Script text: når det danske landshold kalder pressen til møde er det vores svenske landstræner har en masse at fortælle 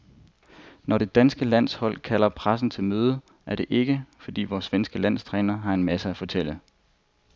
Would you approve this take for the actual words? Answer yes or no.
no